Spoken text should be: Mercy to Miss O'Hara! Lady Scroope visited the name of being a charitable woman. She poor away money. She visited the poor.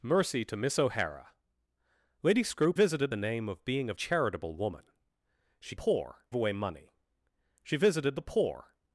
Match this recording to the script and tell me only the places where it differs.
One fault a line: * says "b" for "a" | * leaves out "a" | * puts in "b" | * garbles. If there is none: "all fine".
all fine